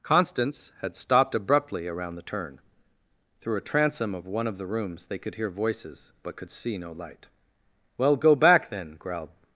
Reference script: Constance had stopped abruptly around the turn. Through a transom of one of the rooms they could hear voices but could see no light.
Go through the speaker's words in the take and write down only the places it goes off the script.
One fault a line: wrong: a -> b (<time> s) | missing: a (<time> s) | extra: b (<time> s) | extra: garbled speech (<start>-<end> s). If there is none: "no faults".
extra: Well go back then growled (8.0 s)